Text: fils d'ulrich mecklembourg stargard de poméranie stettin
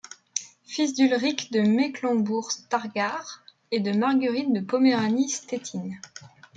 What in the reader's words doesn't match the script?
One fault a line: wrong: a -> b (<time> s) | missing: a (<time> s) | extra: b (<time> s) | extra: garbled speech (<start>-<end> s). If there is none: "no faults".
extra: de (1.5 s)
extra: et de marguerite (3.7 s)